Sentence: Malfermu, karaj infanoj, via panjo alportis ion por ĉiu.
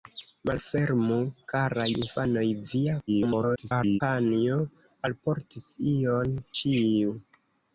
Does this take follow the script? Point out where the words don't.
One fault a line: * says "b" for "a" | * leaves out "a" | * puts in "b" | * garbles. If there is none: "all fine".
* garbles
* leaves out "por"